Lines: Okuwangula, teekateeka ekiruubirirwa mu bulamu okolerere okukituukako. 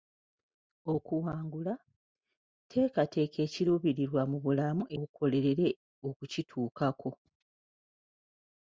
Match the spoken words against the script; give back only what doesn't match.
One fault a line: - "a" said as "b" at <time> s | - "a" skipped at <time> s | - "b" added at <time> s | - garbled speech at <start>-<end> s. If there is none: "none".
none